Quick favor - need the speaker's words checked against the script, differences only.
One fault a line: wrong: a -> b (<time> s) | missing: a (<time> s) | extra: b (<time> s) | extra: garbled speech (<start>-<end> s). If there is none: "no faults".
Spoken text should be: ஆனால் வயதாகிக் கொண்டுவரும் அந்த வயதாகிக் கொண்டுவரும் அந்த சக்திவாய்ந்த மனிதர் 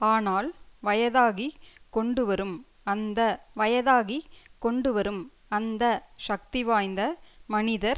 no faults